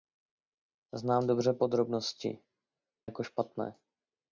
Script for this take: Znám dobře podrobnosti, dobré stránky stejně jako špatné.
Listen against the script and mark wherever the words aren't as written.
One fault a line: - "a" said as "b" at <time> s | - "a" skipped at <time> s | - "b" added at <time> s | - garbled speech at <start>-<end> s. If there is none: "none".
- "dobré stránky stejně" skipped at 2.4 s